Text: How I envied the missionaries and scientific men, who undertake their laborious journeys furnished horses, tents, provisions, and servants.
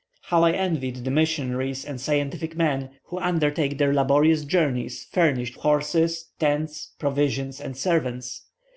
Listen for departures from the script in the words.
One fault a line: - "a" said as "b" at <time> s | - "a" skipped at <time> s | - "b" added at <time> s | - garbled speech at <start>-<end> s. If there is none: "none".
none